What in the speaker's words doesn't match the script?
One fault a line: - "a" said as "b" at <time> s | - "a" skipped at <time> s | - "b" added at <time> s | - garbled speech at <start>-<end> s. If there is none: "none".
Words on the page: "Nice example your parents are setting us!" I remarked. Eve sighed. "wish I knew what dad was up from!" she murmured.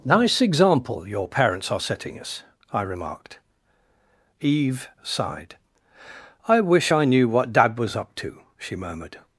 - "I" added at 6.5 s
- "from" said as "to" at 8.2 s